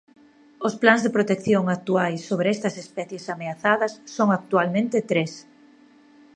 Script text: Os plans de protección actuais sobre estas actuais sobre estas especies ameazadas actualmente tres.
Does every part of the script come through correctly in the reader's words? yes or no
no